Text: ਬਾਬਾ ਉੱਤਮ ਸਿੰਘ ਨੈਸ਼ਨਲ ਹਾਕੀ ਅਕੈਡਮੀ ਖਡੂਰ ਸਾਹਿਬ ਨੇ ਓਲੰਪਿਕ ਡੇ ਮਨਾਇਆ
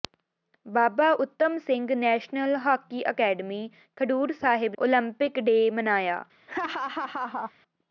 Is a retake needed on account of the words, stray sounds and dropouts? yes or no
yes